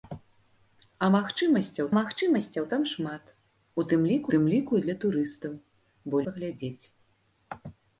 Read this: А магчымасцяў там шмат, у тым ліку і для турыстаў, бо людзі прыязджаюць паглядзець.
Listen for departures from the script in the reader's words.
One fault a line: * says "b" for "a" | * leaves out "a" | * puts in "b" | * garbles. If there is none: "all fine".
* puts in "магчымасцяў"
* puts in "тым ліку"
* leaves out "людзі прыязджаюць"